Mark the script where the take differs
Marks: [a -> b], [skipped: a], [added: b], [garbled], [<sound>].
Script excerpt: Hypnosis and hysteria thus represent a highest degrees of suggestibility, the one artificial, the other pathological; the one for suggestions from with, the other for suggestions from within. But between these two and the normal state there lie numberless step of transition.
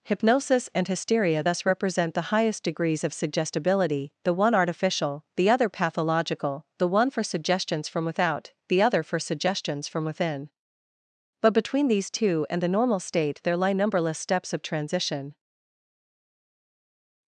Hypnosis and hysteria thus represent [a -> the] highest degrees of suggestibility, the one artificial, the other pathological; the one for suggestions from [with, -> without] the other for suggestions from within. But between these two and the normal state there lie numberless [step -> steps] of transition.